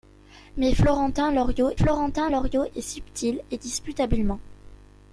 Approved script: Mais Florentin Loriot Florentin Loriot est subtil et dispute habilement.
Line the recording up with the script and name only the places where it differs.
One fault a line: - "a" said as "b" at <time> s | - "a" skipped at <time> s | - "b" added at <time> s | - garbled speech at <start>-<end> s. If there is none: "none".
none